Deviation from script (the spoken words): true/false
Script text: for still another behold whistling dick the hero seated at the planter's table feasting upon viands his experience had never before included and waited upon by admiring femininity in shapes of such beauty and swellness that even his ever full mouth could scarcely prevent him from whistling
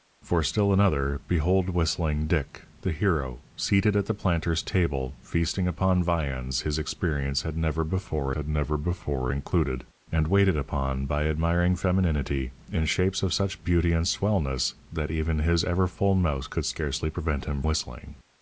true